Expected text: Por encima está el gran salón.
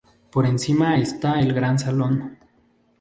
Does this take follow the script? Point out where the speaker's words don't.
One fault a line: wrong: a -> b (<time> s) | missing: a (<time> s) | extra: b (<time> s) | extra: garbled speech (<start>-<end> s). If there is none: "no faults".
no faults